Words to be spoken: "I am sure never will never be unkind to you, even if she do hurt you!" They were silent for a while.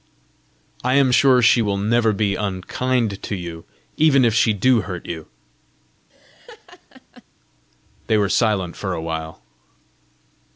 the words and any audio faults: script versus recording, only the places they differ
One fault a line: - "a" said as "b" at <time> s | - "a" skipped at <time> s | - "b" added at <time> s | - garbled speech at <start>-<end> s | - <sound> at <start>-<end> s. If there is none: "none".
- "never" said as "she" at 1.4 s
- laugh at 6.1-7.2 s